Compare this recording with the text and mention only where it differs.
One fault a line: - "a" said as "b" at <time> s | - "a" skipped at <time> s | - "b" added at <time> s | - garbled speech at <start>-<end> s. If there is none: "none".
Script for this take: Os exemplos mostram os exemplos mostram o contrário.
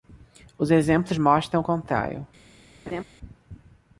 - "os exemplos mostram" skipped at 1.6 s